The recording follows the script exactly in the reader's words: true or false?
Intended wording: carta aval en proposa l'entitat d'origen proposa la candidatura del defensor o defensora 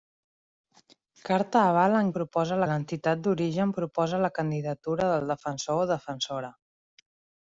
true